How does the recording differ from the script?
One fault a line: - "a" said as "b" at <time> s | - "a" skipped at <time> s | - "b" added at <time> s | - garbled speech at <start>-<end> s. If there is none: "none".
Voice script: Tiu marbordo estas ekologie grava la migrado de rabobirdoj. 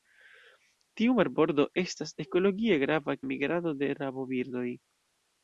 none